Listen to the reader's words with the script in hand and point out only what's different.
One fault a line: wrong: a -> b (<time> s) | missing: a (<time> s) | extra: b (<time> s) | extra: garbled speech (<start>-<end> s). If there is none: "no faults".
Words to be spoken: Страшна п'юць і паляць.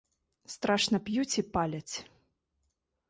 no faults